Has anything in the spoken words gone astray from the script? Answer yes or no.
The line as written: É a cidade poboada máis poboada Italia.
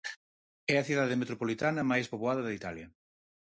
yes